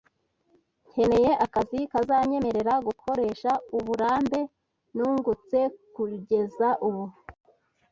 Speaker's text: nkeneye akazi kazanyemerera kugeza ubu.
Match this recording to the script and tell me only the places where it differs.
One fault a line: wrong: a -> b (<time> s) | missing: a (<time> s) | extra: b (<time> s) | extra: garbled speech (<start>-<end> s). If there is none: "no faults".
extra: gukoresha uburambe nungutse (2.9 s)